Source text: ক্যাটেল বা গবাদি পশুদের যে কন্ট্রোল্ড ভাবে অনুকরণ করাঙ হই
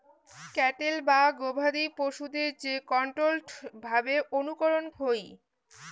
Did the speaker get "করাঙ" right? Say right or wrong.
wrong